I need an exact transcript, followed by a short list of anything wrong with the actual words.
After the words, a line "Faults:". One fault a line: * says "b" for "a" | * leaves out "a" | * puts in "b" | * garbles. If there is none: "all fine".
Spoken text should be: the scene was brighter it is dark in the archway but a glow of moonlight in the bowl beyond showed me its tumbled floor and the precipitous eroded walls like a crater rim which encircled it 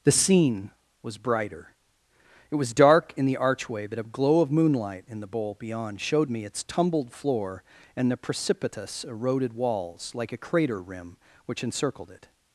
the scene was brighter it was dark in the archway but a glow of moonlight in the bowl beyond showed me its tumbled floor and the precipitous eroded walls like a crater rim which encircled it
Faults:
* says "was" for "is"